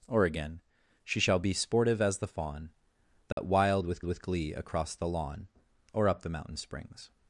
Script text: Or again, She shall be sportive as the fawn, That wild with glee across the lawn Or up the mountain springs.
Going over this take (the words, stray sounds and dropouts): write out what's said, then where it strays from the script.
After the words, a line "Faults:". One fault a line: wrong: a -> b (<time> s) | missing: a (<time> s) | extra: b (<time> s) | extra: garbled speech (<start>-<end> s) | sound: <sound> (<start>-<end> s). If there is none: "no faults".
Or again, She shall be sportive as the fawn, That wild with with glee across the lawn Or up the mountain springs.
Faults:
sound: dropout (3.3-3.4 s)
extra: with (4.0 s)